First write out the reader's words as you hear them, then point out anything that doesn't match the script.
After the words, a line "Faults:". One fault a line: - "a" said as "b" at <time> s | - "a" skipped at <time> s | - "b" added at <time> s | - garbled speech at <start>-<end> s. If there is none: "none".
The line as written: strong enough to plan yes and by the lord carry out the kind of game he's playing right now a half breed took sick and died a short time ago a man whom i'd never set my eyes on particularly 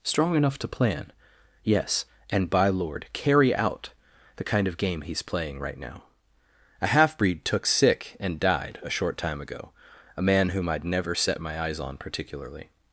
strong enough to plan yes and by lord carry out the kind of game he's playing right now a half breed took sick and died a short time ago a man whom i'd never set my eyes on particularly
Faults:
- "the" skipped at 2.7 s